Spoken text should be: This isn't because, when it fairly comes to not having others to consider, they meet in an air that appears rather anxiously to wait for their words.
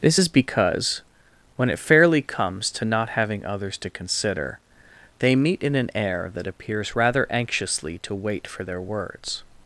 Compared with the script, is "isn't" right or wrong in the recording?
wrong